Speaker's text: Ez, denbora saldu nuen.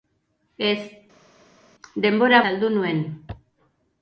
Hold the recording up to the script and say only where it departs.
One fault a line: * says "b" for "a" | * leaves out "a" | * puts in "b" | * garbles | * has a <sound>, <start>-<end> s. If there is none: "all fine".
all fine